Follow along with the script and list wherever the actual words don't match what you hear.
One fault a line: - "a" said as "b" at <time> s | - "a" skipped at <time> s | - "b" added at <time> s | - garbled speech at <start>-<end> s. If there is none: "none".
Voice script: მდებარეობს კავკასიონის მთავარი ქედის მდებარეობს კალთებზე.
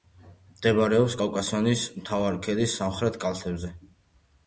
- "მდებარეობს" said as "სამხრეთ" at 2.8 s